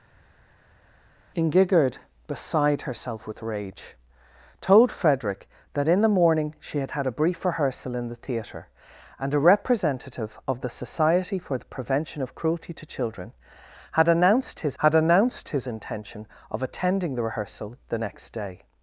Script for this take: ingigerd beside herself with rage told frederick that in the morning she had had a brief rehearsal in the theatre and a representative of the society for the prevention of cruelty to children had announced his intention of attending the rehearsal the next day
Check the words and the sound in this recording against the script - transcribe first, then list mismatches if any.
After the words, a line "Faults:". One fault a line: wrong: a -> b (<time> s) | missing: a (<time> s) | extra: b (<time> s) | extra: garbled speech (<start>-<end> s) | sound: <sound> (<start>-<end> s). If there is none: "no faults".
ingigerd beside herself with rage told frederick that in the morning she had had a brief rehearsal in the theatre and a representative of the society for the prevention of cruelty to children had announced his had announced his intention of attending the rehearsal the next day
Faults:
extra: had announced his (14.8 s)